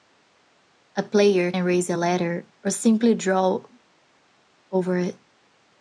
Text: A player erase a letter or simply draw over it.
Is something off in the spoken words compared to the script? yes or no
no